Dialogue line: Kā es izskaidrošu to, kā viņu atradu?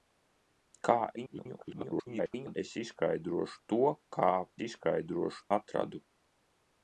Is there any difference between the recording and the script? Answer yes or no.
yes